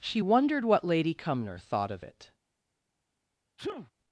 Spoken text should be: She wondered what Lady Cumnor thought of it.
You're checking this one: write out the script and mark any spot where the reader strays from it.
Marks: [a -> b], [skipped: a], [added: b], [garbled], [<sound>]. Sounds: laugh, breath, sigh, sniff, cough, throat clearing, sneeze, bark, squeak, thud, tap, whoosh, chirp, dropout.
She wondered what Lady Cumnor thought of it. [sneeze]